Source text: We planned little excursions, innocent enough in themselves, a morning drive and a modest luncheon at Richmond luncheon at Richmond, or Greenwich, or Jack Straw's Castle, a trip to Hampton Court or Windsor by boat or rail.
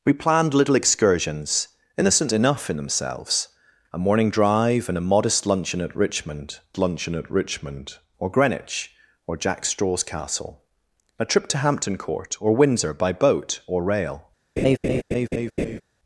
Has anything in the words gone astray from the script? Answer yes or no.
no